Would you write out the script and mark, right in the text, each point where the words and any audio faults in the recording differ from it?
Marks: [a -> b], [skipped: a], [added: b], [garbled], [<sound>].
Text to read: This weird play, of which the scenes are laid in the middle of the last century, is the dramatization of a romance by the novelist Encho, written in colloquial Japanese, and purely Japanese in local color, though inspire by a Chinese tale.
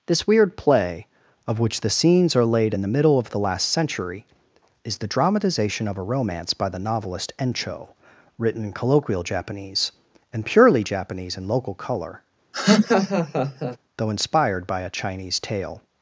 This weird play, of which the scenes are laid in the middle of the last century, is the dramatization of a romance by the novelist Encho, written in colloquial Japanese, and purely Japanese in local color, [laugh] though [inspire -> inspired] by a Chinese tale.